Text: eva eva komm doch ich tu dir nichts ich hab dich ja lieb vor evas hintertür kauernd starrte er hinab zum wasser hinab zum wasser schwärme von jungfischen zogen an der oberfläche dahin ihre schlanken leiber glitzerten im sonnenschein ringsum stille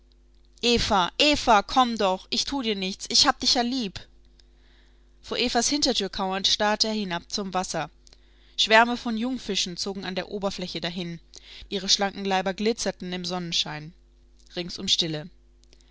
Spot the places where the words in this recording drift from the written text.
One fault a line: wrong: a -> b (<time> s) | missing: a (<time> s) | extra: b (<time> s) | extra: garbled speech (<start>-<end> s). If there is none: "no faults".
missing: hinab zum wasser (7.9 s)